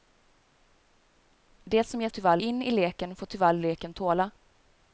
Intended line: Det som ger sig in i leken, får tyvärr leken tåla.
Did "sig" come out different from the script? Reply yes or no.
yes